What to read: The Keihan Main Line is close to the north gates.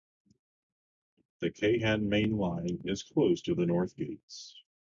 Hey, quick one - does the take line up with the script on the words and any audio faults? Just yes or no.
yes